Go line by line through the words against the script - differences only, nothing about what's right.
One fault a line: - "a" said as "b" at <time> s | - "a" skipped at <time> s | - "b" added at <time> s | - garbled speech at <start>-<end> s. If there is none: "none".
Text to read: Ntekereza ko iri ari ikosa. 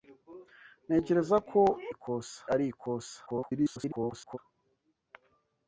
- "iri" said as "ikosa" at 1.9 s
- garbled speech at 3.3-4.4 s